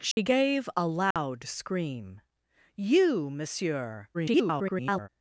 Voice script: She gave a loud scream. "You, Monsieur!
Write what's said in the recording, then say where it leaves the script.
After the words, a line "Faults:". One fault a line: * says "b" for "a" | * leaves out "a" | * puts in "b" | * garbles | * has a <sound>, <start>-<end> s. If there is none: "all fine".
She gave a loud scream. "You, Monsieur! [garbled]
Faults:
* has a dropout, 0.1-0.2 s
* has a dropout, 1.1-1.2 s
* garbles